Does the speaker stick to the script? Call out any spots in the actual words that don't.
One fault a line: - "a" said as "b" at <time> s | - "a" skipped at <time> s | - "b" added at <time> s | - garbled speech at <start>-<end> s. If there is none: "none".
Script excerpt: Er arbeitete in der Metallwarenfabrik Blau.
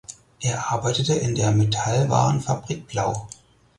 none